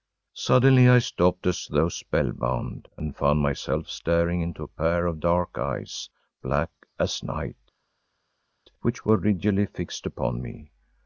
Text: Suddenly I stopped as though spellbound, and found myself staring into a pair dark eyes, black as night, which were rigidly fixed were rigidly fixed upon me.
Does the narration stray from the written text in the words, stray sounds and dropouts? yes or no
yes